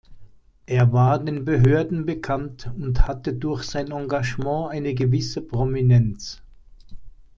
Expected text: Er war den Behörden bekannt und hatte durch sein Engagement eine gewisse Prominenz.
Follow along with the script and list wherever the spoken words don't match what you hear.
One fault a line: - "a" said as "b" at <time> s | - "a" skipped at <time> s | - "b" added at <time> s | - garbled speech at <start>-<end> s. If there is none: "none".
none